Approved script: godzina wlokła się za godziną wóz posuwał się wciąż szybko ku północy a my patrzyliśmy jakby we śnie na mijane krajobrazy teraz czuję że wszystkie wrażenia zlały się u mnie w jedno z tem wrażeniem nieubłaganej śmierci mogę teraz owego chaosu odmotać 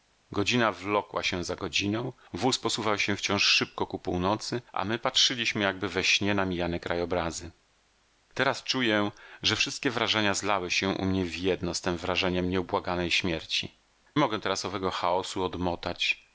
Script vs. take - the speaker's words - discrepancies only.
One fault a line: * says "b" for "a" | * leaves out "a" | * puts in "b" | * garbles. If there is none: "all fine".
all fine